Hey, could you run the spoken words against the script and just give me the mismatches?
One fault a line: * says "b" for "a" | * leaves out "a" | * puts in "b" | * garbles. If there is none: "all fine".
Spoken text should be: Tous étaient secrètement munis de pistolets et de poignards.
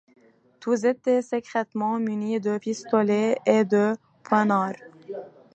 all fine